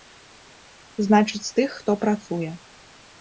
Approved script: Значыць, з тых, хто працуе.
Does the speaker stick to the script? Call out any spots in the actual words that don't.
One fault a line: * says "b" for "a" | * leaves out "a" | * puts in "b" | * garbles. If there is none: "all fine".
all fine